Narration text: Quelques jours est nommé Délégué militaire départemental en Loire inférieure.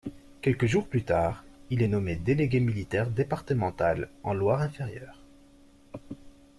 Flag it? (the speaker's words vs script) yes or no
yes